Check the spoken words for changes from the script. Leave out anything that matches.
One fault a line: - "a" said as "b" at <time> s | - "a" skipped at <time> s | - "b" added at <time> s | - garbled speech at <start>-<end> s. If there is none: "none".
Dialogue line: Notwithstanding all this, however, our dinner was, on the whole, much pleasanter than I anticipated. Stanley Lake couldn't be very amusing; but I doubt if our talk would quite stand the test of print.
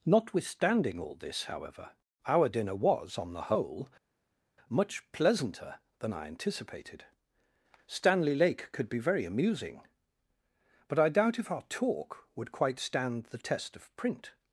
- "couldn't" said as "could" at 8.7 s